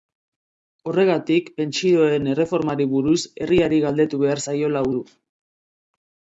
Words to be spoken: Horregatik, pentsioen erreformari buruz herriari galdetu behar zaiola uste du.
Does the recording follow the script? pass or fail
fail